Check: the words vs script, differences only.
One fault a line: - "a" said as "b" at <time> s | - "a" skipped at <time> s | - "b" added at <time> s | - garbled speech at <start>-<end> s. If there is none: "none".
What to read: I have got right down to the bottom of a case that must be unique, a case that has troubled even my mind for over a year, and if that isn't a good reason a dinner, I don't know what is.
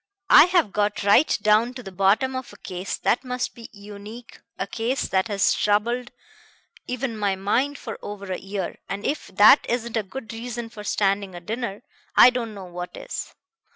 - "for standing" added at 10.7 s